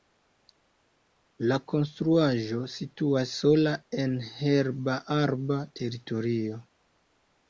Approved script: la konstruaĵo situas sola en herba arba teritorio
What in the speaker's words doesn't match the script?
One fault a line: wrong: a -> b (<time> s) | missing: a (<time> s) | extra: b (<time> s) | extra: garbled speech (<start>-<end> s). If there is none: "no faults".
no faults